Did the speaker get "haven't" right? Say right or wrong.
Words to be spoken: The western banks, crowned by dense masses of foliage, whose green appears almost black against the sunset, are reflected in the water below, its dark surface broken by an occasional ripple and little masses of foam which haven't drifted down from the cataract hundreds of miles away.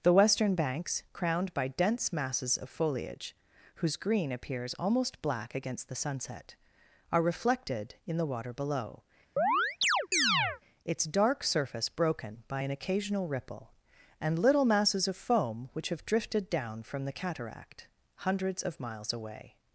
wrong